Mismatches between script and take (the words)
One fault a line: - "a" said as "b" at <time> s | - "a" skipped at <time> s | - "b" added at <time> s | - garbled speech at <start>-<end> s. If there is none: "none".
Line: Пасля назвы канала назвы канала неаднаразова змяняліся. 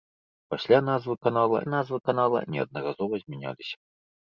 none